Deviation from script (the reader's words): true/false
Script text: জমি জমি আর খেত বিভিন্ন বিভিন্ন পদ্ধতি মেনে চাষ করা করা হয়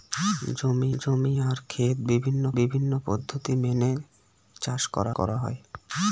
false